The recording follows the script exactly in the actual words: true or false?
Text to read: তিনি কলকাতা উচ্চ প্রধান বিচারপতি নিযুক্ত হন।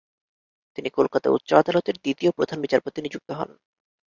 false